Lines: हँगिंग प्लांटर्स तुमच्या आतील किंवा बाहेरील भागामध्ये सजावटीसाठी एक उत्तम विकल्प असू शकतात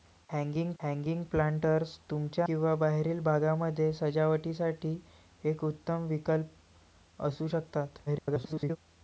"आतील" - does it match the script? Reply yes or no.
no